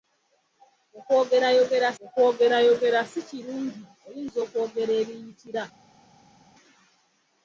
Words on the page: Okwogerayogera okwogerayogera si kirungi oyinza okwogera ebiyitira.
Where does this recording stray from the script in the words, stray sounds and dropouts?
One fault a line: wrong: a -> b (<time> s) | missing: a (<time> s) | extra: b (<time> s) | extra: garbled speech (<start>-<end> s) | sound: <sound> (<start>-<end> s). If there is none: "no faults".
no faults